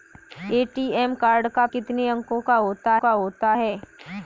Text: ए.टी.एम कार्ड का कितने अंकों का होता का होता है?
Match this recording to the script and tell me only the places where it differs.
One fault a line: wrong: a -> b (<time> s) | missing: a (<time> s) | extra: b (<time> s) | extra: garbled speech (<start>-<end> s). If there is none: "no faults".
no faults